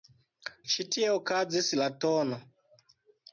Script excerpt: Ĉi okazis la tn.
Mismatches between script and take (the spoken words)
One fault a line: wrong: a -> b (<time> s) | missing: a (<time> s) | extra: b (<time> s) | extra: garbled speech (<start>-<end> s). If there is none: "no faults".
extra: tie (0.9 s)